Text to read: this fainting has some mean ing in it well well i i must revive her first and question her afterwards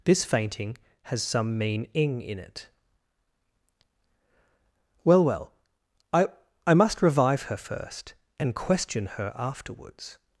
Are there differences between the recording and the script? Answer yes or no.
no